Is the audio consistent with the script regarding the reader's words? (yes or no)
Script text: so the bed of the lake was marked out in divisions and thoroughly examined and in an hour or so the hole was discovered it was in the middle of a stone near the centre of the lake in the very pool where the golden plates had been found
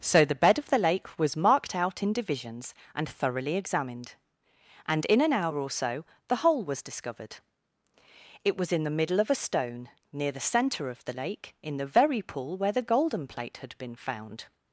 no